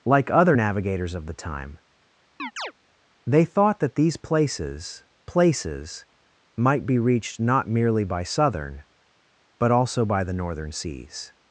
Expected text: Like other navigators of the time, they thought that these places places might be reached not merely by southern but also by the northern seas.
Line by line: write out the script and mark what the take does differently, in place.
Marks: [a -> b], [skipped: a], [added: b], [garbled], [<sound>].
Like other navigators of the time, [chirp] they thought that these places places might be reached not merely by southern but also by the northern seas.